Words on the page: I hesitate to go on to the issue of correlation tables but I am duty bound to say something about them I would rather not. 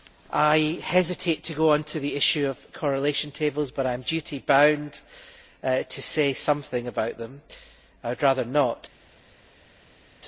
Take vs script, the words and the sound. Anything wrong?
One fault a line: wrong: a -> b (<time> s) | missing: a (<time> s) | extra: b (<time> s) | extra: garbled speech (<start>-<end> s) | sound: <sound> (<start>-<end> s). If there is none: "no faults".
no faults